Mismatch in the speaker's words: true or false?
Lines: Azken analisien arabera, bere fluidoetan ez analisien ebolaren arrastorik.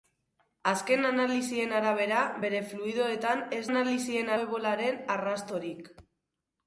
false